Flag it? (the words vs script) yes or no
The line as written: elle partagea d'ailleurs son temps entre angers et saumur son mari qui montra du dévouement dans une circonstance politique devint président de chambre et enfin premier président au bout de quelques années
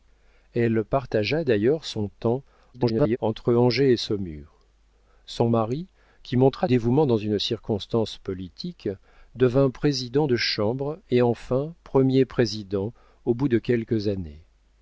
yes